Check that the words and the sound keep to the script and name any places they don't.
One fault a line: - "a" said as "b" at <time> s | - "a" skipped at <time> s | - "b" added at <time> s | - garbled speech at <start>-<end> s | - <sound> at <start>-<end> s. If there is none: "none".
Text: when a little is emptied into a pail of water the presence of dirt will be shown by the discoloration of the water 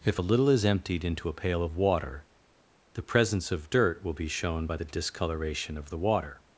- "when" said as "if" at 0.0 s